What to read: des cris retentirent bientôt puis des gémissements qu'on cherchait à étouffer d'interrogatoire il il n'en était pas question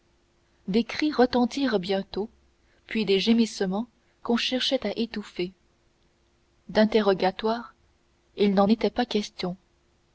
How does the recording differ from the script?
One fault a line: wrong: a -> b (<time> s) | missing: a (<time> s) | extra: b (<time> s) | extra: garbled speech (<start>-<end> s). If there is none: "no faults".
missing: il (8.6 s)